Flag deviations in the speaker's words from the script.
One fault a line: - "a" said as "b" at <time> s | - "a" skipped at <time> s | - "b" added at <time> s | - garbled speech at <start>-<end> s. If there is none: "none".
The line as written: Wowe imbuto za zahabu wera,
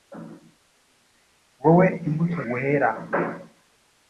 - "za zahabu" skipped at 2.4 s